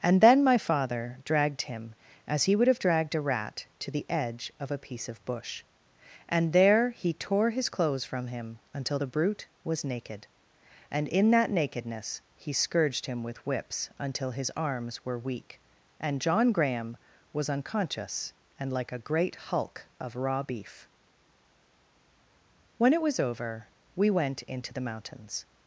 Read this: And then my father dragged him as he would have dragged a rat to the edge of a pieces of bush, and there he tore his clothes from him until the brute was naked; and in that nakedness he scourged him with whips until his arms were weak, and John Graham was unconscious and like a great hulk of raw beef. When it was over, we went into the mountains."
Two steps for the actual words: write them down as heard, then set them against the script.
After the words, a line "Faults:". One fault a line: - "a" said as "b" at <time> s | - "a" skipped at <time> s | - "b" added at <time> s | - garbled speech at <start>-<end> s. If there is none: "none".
And then my father dragged him as he would have dragged a rat to the edge of a piece of bush, and there he tore his clothes from him until the brute was naked; and in that nakedness he scourged him with whips until his arms were weak, and John Graham was unconscious and like a great hulk of raw beef. When it was over, we went into the mountains."
Faults:
- "pieces" said as "piece" at 4.8 s